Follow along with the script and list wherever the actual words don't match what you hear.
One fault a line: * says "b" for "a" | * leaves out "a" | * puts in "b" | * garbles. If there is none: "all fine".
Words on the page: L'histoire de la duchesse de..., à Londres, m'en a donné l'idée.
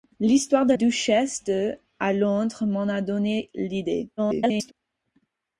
* leaves out "la"
* garbles